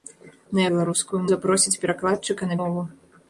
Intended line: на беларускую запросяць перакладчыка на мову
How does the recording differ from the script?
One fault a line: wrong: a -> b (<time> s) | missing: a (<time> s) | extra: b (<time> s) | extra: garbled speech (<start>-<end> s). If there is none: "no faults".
no faults